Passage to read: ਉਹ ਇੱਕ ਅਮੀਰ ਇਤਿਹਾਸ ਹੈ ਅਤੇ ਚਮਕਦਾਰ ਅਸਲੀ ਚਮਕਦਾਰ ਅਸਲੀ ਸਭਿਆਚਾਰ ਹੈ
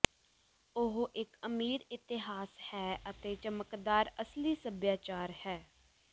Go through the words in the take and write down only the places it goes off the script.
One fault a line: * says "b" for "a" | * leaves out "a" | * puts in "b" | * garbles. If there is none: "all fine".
* leaves out "ਚਮਕਦਾਰ ਅਸਲੀ"